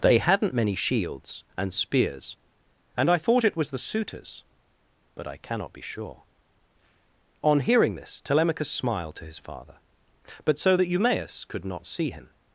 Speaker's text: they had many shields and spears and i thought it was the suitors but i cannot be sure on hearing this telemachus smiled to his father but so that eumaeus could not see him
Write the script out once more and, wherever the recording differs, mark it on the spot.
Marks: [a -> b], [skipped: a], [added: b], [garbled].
they [had -> hadn't] many shields and spears and i thought it was the suitors but i cannot be sure on hearing this telemachus smiled to his father but so that eumaeus could not see him